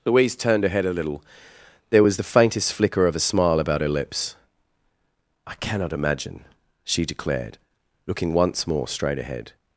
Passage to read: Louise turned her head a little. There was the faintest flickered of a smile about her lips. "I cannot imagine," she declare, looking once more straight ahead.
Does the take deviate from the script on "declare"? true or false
true